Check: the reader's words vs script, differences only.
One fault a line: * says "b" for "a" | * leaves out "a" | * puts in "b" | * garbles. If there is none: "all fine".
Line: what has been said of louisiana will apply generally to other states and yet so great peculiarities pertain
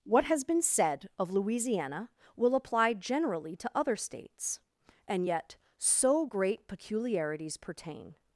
all fine